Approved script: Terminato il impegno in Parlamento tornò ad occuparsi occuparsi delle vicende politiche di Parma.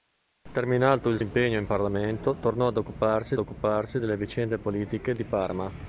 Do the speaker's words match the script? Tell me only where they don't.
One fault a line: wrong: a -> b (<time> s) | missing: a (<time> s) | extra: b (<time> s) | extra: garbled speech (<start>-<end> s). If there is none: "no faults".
no faults